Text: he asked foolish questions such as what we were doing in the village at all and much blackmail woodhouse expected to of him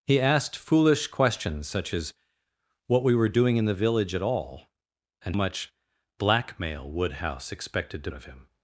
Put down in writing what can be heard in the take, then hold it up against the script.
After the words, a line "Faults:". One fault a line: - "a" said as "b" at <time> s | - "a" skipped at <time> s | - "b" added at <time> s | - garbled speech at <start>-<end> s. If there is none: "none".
he asked foolish questions such as what we were doing in the village at all and much blackmail woodhouse expected to of him
Faults:
none